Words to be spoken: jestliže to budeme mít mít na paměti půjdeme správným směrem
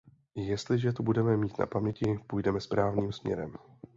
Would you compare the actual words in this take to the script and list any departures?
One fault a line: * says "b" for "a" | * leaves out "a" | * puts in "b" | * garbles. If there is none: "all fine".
* leaves out "mít"